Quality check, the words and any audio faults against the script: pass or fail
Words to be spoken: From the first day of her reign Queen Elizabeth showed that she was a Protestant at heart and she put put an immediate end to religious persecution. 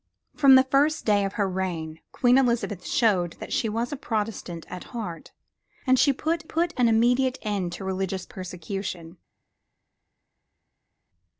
pass